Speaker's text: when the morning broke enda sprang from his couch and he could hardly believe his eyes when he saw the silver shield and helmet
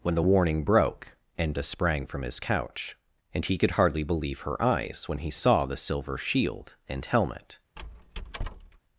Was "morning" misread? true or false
true